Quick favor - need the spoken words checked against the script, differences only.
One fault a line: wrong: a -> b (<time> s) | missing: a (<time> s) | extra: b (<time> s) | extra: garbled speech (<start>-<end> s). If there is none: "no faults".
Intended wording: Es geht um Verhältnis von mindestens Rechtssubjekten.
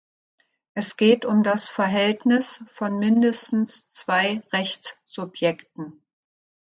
extra: das (1.4 s)
extra: zwei (3.9 s)